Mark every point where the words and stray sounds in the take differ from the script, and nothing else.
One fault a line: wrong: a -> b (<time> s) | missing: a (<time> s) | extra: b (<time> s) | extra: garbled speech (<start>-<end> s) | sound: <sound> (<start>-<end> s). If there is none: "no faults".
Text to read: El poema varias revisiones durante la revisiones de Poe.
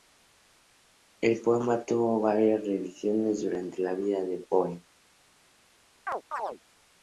extra: tuvo (1.9 s)
wrong: revisiones -> vida (3.9 s)
sound: chirp (6.1-6.6 s)